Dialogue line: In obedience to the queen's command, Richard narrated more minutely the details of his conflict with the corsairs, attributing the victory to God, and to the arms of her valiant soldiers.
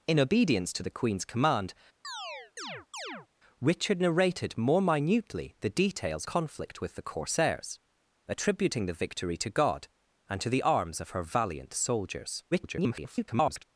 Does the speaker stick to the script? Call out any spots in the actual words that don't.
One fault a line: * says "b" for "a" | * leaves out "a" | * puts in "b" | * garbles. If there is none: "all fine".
* leaves out "of his"
* garbles